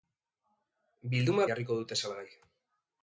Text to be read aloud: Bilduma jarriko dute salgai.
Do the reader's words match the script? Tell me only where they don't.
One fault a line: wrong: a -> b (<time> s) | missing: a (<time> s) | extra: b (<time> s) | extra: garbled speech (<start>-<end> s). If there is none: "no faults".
no faults